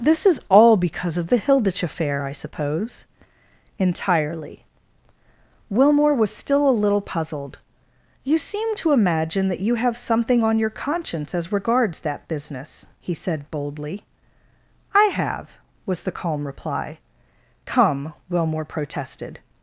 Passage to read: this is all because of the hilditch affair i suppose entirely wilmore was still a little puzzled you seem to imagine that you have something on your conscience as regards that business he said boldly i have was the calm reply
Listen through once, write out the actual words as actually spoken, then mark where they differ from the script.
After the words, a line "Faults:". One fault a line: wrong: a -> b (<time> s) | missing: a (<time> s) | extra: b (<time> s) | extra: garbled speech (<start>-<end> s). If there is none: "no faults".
this is all because of the hilditch affair i suppose entirely wilmore was still a little puzzled you seem to imagine that you have something on your conscience as regards that business he said boldly i have was the calm reply come wilmore protested
Faults:
extra: come wilmore protested (17.6 s)